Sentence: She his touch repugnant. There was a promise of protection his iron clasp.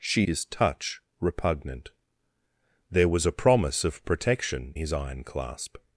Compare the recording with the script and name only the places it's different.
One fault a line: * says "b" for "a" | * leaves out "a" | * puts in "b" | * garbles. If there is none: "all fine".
all fine